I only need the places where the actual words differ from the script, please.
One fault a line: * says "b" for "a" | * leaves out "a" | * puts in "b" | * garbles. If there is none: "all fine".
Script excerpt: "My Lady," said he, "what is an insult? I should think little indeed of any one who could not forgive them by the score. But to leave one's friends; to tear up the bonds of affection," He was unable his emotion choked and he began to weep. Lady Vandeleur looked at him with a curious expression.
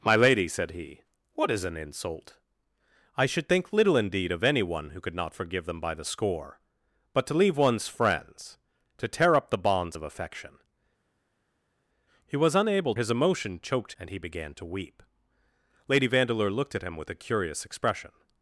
all fine